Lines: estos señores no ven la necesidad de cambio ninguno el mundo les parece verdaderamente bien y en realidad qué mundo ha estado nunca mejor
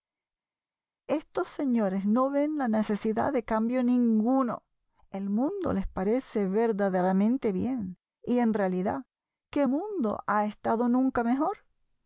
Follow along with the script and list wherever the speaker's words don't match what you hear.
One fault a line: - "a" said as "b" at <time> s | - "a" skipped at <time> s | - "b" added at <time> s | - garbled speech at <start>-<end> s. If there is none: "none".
none